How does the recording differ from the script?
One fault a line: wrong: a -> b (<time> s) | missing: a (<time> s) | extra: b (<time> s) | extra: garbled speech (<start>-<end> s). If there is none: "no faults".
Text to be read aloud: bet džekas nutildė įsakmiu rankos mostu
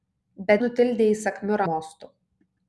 missing: džekas (0.6 s)
missing: rankos (1.6 s)